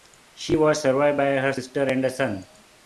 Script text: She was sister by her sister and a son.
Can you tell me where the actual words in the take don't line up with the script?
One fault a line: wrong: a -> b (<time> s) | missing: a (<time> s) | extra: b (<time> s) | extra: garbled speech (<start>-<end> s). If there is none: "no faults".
wrong: sister -> survived (0.8 s)